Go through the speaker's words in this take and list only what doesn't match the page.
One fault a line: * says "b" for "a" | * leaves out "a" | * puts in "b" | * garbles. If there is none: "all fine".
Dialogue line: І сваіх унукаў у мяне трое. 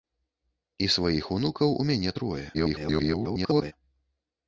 * garbles